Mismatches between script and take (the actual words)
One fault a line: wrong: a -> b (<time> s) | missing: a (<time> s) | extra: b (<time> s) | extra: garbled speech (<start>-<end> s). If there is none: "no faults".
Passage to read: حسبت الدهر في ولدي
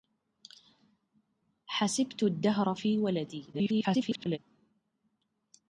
extra: garbled speech (3.5-4.4 s)